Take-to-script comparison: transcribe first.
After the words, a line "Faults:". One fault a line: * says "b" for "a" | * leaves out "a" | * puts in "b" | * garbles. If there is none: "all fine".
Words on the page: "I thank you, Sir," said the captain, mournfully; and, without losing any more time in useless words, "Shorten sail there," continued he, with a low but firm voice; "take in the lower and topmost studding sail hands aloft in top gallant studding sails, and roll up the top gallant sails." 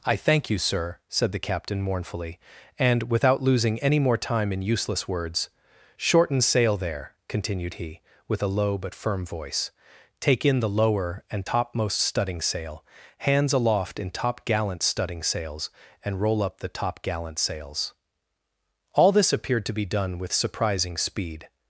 "I thank you, Sir," said the captain, mournfully; and, without losing any more time in useless words, "Shorten sail there," continued he, with a low but firm voice; "take in the lower and topmost studding sail hands aloft in top gallant studding sails, and roll up the top gallant sails." All this appeared to be done with surprising speed
Faults:
* puts in "All this appeared to be done with surprising speed"